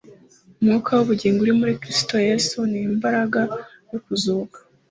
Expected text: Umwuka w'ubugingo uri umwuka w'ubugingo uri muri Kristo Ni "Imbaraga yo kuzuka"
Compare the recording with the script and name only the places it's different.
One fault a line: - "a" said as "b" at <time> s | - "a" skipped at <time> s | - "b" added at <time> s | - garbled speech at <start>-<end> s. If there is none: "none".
- "umwuka w'ubugingo uri" skipped at 1.5 s
- "Yesu" added at 2.3 s